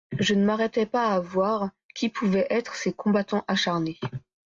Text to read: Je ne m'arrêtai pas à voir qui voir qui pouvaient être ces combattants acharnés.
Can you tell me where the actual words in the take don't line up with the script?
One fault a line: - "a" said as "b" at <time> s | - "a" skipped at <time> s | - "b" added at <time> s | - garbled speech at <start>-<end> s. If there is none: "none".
- "voir qui" skipped at 2.1 s